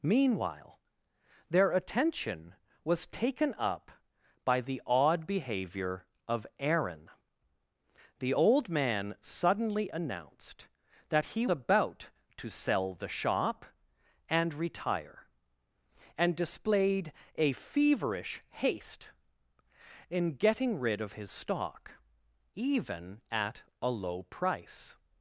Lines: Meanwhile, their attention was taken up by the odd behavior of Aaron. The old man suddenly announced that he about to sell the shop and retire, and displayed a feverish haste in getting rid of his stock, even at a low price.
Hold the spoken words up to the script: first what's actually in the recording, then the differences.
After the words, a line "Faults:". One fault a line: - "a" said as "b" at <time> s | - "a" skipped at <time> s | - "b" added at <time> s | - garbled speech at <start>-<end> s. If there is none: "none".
Meanwhile, their attention was taken up by the odd behavior of Aaron. The old man suddenly announced that he about to sell the shop and retire, and displayed a feverish haste in getting rid of his stock, even at a low price.
Faults:
none